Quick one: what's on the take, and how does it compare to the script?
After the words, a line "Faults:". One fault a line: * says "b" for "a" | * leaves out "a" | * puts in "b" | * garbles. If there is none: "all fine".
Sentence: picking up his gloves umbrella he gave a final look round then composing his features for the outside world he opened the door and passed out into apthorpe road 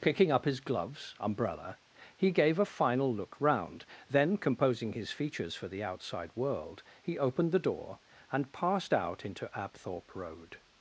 picking up his gloves umbrella he gave a final look round then composing his features for the outside world he opened the door and passed out into apthorpe road
Faults:
all fine